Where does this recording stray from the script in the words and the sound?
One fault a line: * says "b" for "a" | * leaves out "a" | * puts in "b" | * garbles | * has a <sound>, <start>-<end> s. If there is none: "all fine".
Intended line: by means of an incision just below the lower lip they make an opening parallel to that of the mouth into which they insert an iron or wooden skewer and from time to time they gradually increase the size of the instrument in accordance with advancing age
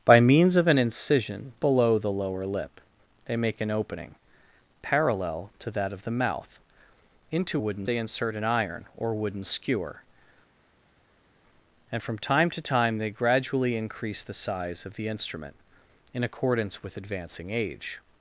* leaves out "just"
* says "wooden" for "which"